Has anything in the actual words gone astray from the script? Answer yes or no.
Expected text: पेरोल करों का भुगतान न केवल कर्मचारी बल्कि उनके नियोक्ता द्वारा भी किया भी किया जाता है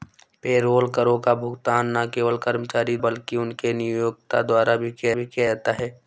no